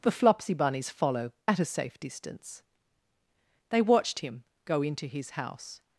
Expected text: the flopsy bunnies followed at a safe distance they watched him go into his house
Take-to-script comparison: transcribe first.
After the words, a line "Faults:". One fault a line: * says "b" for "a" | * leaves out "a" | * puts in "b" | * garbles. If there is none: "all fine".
the flopsy bunnies follow at a safe distance they watched him go into his house
Faults:
* says "follow" for "followed"